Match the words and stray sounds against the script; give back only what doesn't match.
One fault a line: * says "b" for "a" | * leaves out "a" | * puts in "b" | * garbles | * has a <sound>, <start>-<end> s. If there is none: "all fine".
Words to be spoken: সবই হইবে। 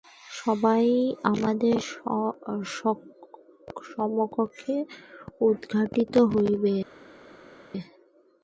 * puts in "আমাদের সমক্ষে উদ্ঘাটিত"